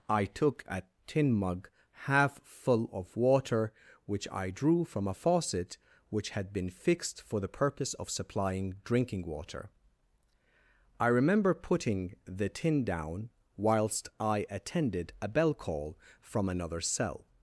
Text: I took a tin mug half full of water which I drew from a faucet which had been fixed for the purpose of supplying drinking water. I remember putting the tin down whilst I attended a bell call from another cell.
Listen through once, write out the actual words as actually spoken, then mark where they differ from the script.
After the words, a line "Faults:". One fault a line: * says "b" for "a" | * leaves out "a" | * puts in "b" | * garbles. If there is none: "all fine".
I took a tin mug half full of water which I drew from a faucet which had been fixed for the purpose of supplying drinking water. I remember putting the tin down whilst I attended a bell call from another cell.
Faults:
all fine